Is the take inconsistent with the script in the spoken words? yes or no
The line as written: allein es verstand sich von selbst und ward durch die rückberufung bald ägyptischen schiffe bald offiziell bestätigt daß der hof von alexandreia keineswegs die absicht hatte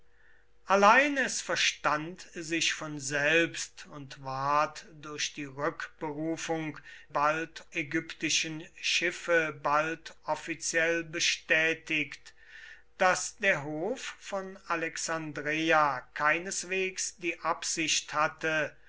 no